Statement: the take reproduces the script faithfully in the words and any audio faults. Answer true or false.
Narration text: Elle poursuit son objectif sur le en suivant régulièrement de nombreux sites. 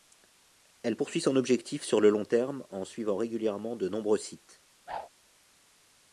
false